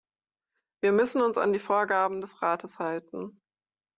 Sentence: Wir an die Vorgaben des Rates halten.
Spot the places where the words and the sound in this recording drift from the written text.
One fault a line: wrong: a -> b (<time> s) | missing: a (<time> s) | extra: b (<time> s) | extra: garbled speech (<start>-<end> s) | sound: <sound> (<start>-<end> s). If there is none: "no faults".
extra: müssen uns (0.9 s)